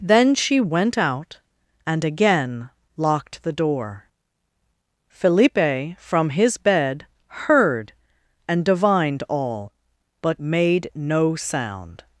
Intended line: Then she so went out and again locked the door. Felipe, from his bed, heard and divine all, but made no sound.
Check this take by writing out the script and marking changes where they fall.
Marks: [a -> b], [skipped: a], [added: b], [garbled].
Then she [skipped: so] went out and again locked the door. Felipe, from his bed, heard and [divine -> divined] all, but made no sound.